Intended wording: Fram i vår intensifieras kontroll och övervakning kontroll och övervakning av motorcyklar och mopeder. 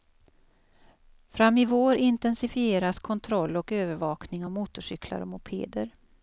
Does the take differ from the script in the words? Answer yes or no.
yes